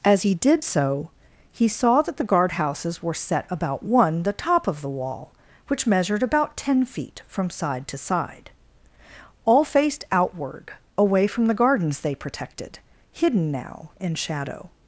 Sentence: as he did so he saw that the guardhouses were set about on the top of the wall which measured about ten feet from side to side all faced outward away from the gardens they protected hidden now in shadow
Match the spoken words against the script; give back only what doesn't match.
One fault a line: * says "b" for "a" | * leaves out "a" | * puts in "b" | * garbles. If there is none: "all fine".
* says "one" for "on"